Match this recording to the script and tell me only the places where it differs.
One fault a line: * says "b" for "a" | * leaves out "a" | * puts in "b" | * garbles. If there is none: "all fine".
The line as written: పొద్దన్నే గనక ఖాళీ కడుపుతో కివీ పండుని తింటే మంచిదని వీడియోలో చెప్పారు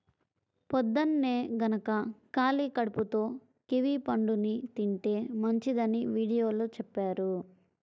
all fine